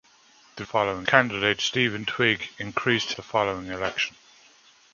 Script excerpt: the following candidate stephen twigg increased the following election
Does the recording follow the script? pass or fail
pass